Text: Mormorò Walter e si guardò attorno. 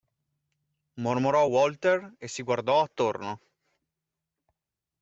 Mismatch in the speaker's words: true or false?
false